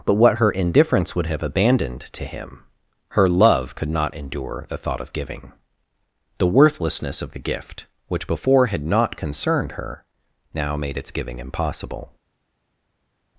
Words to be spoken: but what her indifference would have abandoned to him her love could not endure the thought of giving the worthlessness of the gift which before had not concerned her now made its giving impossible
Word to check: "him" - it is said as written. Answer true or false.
true